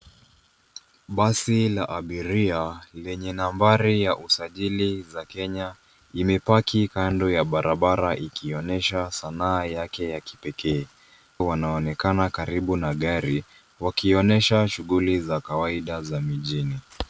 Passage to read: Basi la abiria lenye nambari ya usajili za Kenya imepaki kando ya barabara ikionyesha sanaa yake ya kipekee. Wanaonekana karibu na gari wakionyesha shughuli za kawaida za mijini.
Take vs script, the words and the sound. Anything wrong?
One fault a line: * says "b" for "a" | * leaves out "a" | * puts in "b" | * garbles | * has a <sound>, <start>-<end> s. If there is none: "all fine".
all fine